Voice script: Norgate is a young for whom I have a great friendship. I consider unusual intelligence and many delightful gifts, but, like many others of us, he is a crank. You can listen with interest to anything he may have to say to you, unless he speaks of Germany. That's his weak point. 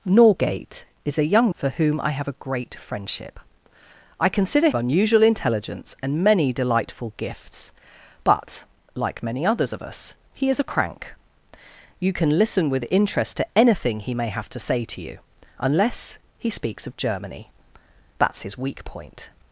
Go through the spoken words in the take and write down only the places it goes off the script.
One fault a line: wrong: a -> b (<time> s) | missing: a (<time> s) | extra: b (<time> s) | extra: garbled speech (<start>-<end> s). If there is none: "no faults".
no faults